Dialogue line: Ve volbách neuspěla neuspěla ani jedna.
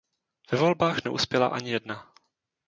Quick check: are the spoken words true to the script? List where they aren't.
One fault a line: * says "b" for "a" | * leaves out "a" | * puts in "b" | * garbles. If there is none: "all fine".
* leaves out "neuspěla"